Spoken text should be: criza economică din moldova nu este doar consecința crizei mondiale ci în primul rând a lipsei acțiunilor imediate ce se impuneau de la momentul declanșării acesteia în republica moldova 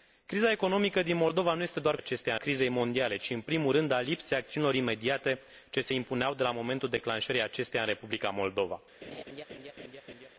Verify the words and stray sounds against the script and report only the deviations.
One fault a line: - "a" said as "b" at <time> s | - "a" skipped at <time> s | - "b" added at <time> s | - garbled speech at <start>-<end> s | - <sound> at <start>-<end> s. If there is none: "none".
- "consecința" said as "acesteia" at 1.9 s
- laugh at 9.0-10.3 s